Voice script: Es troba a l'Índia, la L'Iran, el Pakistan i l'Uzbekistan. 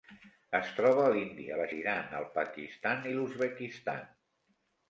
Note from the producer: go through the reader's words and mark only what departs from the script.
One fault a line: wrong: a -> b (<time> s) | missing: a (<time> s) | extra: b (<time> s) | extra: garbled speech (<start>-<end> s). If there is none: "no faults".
no faults